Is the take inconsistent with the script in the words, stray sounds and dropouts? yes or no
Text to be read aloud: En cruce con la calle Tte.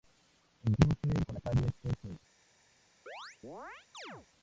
yes